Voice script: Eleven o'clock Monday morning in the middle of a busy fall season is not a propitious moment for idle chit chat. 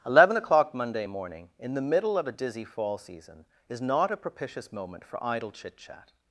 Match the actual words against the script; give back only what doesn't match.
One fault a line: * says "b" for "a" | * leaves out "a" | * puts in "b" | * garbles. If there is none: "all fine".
* says "dizzy" for "busy"